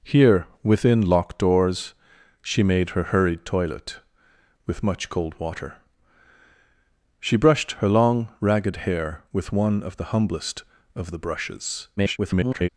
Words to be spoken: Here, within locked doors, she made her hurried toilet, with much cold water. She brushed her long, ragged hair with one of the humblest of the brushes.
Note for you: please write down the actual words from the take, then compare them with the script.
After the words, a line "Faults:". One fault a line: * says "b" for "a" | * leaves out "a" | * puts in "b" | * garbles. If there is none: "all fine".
Here, within locked doors, she made her hurried toilet, with much cold water. She brushed her long, ragged hair with one of the humblest of the brushes. [garbled]
Faults:
* garbles